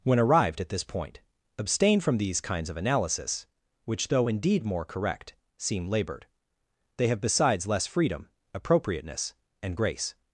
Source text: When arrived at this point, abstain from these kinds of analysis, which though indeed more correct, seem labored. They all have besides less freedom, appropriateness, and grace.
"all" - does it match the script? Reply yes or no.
no